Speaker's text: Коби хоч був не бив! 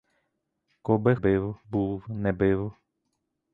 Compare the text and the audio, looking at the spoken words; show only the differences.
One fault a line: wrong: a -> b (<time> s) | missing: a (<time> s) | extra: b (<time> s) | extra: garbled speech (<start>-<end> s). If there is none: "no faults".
wrong: хоч -> бив (1.1 s)